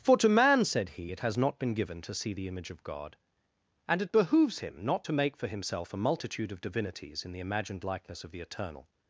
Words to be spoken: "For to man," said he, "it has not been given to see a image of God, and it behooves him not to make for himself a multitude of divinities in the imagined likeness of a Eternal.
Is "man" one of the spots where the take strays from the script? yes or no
no